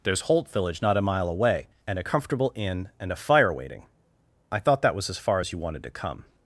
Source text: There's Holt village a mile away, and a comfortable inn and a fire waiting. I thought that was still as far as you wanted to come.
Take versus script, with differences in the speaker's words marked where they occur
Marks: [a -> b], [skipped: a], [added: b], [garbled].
There's Holt village [added: not] a mile away, and a comfortable inn and a fire waiting. I thought that was [skipped: still] as far as you wanted to come.